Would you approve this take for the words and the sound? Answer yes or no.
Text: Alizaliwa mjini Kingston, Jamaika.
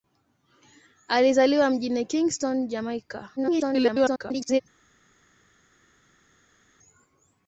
no